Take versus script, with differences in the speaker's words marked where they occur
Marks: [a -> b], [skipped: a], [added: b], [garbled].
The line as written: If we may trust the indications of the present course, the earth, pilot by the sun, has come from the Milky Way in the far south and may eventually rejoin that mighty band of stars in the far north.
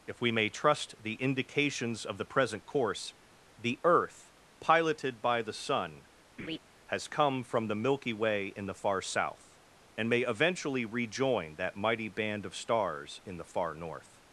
If we may trust the indications of the present course, the earth, [pilot -> piloted] by the sun, has come from the Milky Way in the far south and may eventually rejoin that mighty band of stars in the far north.